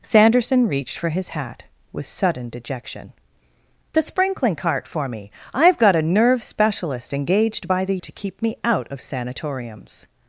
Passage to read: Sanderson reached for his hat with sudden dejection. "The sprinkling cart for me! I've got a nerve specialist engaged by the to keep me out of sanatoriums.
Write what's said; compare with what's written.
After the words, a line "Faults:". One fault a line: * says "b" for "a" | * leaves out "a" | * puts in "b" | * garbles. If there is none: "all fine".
Sanderson reached for his hat with sudden dejection. "The sprinkling cart for me! I've got a nerve specialist engaged by the to keep me out of sanatoriums.
Faults:
all fine